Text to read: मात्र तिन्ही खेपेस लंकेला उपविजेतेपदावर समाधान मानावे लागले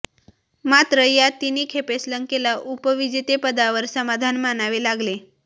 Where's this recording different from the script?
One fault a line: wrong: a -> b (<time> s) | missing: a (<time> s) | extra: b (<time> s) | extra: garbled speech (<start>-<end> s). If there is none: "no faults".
extra: या (1.0 s)